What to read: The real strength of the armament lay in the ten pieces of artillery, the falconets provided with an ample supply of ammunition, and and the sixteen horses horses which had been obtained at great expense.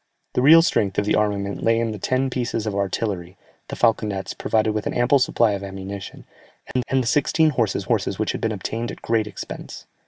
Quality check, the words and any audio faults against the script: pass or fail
fail